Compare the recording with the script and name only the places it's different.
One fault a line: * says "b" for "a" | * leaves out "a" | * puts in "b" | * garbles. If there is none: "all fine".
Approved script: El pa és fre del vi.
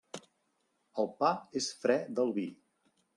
all fine